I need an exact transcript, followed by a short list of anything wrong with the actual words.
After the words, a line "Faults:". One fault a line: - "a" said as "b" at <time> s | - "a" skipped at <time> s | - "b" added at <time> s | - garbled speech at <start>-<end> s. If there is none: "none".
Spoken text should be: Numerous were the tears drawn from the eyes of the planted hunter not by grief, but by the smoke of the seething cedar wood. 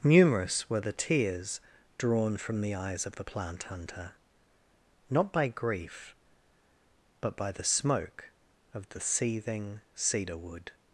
Numerous were the tears drawn from the eyes of the plant hunter not by grief, but by the smoke of the seething cedar wood.
Faults:
- "planted" said as "plant" at 3.2 s